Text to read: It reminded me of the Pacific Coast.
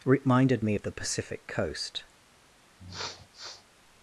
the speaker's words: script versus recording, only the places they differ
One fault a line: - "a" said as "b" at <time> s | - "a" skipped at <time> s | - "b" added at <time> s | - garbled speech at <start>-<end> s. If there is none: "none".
- "It" skipped at 0.1 s